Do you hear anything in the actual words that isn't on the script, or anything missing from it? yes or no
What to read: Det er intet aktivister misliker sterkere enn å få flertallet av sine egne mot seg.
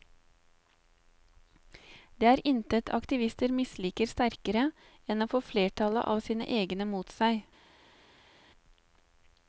no